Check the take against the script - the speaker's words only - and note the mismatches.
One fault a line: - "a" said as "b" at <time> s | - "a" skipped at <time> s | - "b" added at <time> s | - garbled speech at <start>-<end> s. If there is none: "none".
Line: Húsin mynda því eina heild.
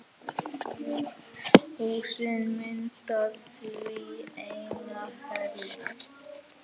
none